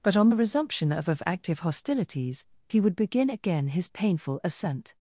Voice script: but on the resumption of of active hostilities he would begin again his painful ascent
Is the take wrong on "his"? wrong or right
right